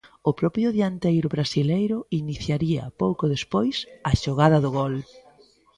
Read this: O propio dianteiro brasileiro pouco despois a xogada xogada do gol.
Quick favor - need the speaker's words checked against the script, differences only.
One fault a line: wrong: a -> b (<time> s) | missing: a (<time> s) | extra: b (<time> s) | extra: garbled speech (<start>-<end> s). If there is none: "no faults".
extra: iniciaría (2.2 s)
missing: xogada (4.6 s)